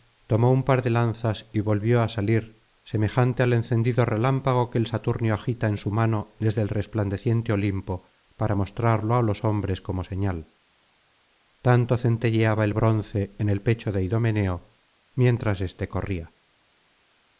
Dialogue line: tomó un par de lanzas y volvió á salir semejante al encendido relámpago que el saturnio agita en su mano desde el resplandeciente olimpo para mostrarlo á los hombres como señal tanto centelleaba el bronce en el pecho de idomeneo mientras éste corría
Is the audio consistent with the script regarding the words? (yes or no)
yes